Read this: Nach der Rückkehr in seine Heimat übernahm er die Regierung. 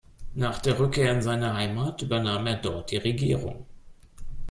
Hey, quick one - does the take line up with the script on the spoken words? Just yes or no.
no